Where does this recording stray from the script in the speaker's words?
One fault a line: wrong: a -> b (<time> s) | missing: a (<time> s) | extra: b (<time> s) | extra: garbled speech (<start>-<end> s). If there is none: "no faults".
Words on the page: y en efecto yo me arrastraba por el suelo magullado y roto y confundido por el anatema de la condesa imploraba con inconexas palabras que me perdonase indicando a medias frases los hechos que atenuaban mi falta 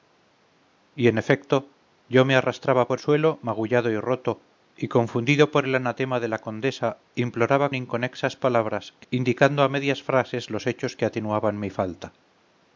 missing: el (3.0 s)
missing: con (7.7 s)
missing: me perdonase (9.1 s)